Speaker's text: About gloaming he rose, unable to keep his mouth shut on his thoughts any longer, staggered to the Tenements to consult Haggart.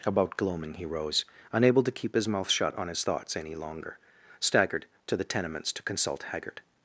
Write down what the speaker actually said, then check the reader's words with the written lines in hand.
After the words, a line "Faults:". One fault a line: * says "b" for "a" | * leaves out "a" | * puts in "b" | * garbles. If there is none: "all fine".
About gloaming he rose, unable to keep his mouth shut on his thoughts any longer, staggered to the Tenements to consult Haggart.
Faults:
all fine